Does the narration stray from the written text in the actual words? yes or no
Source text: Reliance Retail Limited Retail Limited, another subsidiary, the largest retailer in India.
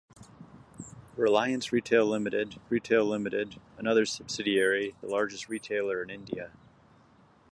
no